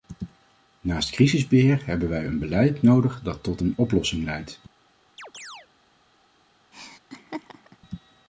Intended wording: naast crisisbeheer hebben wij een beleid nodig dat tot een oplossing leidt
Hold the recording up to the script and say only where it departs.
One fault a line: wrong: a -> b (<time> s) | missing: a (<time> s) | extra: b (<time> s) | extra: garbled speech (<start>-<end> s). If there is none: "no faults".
no faults